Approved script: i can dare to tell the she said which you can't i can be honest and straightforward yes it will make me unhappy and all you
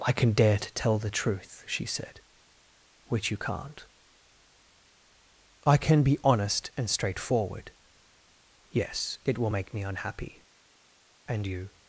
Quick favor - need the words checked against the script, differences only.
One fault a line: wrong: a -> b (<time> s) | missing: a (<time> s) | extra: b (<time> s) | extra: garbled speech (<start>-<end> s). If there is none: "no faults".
extra: truth (1.1 s)
missing: all (11.5 s)